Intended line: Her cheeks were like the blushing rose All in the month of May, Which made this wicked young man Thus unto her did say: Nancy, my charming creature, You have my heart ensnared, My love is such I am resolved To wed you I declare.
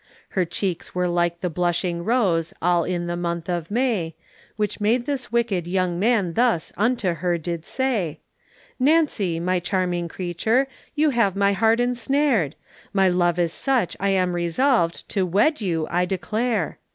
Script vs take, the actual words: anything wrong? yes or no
no